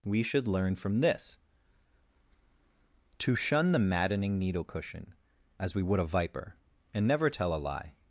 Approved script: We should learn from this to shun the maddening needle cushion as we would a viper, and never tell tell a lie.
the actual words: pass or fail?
fail